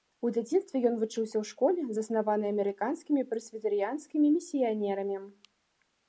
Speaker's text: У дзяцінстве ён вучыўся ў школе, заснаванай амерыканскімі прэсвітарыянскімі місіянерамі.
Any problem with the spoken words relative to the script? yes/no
no